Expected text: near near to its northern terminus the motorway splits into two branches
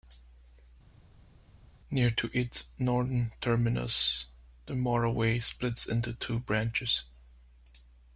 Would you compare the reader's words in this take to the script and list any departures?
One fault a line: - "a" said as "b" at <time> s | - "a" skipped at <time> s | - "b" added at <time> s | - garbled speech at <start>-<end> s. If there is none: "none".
- "near" skipped at 2.1 s